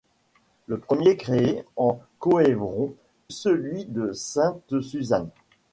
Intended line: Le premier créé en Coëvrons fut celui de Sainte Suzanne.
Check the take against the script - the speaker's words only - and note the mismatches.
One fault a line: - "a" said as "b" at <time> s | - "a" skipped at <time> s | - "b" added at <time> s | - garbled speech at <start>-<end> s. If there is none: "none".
- "fut" skipped at 3.0 s